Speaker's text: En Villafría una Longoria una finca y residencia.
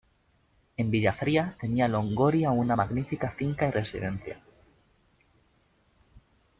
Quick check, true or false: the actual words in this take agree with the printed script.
false